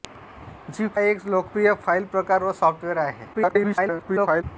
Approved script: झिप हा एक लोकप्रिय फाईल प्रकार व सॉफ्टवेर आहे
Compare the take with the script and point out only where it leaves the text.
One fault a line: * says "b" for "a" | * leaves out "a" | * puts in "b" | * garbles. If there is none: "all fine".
* leaves out "हा"
* garbles